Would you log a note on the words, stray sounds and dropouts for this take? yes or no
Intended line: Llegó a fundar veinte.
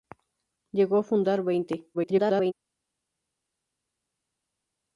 yes